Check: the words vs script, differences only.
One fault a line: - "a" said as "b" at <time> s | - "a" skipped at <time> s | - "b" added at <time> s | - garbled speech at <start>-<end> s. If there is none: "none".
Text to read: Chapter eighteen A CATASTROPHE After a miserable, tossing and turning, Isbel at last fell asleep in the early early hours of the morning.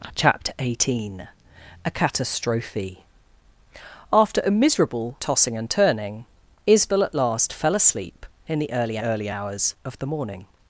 none